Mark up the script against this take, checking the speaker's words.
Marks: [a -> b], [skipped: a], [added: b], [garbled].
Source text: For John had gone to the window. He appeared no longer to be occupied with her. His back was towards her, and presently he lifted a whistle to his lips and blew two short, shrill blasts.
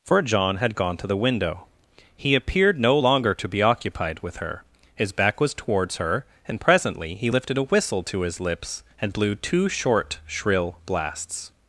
For John had gone to the window. He appeared no longer to be occupied with her. His back was towards her, and presently he lifted a whistle to his lips and blew two short, shrill blasts.